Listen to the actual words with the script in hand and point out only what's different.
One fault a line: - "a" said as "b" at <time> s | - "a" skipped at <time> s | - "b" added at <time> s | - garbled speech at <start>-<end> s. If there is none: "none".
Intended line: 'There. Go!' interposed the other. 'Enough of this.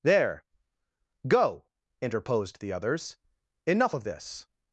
- "other" said as "others" at 2.7 s